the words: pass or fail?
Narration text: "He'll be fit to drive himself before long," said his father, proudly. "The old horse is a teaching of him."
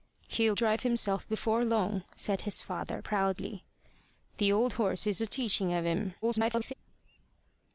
fail